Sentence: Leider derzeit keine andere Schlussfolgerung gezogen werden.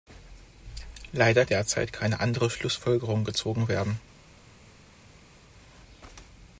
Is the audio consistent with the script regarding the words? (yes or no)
yes